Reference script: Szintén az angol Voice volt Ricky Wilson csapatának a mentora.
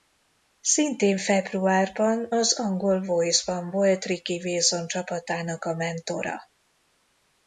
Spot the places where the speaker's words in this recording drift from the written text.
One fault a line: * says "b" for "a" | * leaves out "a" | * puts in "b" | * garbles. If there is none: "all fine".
* puts in "februárban"
* puts in "ban"